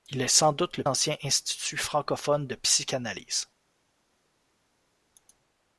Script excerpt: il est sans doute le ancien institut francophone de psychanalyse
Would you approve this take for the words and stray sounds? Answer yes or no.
yes